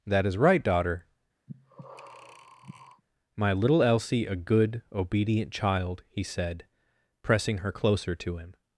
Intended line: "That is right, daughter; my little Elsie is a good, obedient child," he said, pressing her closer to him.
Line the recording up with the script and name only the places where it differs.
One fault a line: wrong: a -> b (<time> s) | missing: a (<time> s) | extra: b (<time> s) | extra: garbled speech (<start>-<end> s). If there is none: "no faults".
missing: is (4.2 s)